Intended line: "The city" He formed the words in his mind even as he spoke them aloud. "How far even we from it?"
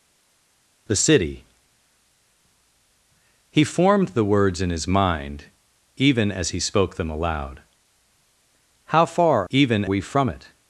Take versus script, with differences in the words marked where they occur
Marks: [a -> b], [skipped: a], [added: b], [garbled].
"The city" He formed the words in his mind even as he spoke them aloud. "How far even we from it?"